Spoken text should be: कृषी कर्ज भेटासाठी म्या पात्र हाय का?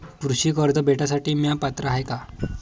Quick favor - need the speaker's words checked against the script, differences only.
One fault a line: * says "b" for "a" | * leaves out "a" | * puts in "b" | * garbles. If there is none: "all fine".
all fine